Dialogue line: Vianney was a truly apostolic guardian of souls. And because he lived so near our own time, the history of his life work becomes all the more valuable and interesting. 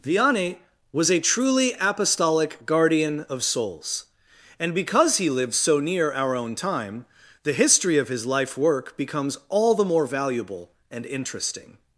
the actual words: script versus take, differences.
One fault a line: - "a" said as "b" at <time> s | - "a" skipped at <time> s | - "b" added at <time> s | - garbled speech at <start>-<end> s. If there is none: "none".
none